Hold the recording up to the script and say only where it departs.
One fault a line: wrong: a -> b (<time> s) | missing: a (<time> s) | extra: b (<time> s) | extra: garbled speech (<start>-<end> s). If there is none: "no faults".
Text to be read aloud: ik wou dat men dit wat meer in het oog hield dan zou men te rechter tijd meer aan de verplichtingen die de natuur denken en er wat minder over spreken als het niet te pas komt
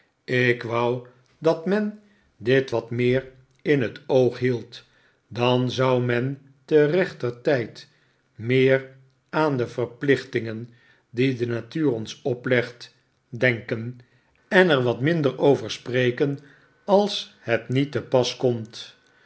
extra: ons oplegt (11.9 s)